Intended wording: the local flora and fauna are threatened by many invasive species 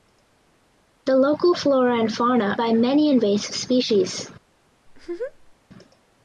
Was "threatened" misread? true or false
true